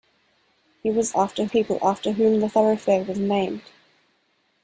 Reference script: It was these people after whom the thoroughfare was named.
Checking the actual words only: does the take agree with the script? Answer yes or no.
no